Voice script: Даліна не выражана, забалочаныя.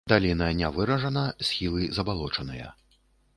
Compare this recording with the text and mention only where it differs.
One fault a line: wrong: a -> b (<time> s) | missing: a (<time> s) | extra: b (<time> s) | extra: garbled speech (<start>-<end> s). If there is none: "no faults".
extra: схілы (1.5 s)